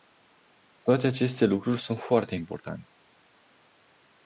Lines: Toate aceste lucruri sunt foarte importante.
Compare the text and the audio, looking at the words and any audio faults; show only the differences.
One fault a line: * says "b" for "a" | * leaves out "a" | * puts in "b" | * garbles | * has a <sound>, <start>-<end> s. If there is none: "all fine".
all fine